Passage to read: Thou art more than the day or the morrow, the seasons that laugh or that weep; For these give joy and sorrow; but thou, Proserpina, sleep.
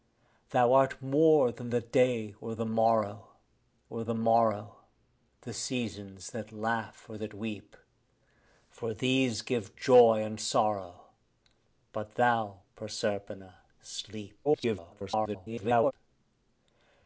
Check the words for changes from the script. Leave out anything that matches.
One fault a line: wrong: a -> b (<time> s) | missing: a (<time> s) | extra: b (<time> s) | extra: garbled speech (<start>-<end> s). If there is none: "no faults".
extra: or the morrow (3.9 s)
extra: garbled speech (14.4-15.9 s)